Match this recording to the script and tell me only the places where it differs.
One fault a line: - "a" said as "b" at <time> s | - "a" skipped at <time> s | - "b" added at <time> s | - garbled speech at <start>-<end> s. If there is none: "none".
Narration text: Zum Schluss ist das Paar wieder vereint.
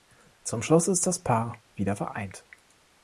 none